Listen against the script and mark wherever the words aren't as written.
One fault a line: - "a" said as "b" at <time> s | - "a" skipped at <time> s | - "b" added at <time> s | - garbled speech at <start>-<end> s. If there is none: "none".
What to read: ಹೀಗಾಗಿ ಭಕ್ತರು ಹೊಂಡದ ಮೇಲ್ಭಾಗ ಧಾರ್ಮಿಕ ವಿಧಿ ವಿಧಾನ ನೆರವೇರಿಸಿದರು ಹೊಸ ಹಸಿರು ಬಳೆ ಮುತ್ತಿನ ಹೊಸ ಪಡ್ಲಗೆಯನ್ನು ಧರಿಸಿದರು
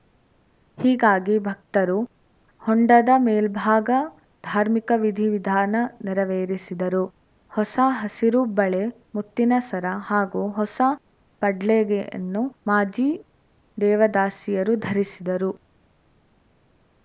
- "ಸರ ಹಾಗೂ" added at 9.7 s
- "ಮಾಜಿ ದೇವದಾಸಿಯರು" added at 12.7 s